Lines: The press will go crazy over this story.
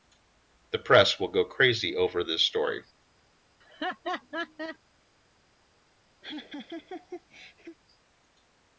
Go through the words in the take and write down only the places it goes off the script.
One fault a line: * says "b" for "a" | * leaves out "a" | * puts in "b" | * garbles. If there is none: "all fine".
all fine